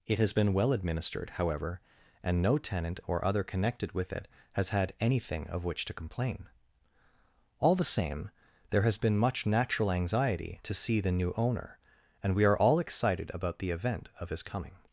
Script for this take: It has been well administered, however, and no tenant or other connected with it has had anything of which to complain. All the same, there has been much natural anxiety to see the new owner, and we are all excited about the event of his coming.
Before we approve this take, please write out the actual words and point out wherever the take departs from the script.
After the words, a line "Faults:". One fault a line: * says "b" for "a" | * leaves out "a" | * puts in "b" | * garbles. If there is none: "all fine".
It has been well administered, however, and no tenant or other connected with it has had anything of which to complain. All the same, there has been much natural anxiety to see the new owner, and we are all excited about the event of his coming.
Faults:
all fine